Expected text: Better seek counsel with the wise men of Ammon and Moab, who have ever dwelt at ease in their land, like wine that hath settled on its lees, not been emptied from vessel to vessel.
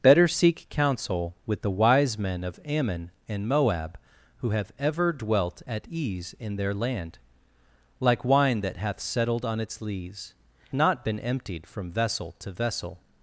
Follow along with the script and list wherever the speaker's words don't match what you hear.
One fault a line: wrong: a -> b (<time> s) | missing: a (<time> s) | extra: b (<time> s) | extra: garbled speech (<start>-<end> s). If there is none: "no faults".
no faults